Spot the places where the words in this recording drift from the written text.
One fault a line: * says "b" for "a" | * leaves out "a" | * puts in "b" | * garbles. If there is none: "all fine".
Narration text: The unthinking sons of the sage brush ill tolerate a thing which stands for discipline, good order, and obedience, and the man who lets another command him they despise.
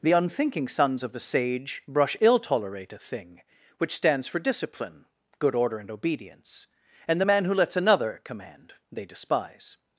* leaves out "him"